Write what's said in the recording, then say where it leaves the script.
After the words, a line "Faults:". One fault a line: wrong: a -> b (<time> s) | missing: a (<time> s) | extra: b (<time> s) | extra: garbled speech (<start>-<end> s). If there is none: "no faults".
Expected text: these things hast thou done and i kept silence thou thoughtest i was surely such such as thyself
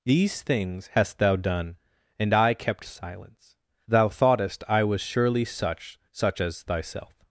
these things hast thou done and i kept silence thou thoughtest i was surely such such as thyself
Faults:
no faults